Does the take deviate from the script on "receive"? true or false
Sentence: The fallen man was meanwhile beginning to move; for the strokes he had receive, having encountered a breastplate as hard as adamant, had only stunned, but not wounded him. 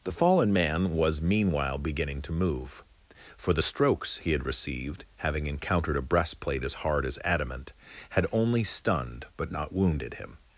true